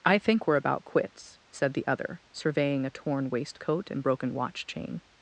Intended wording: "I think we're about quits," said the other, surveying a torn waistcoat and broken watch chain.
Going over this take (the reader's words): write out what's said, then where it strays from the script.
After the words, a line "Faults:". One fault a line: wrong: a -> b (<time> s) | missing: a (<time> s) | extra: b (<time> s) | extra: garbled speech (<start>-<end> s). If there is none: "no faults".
"I think we're about quits," said the other, surveying a torn waistcoat and broken watch chain.
Faults:
no faults